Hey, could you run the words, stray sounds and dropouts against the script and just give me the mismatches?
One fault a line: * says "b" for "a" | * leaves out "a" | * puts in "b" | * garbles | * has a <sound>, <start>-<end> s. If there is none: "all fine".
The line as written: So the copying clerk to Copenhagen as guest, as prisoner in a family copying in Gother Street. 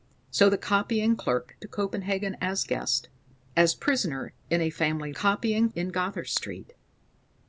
all fine